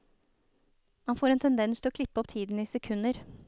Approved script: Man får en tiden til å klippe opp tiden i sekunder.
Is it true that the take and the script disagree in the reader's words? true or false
true